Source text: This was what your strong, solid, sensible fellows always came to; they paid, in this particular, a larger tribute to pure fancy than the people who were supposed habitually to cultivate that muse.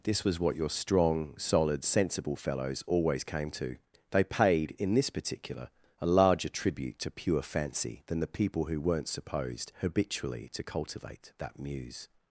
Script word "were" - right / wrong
wrong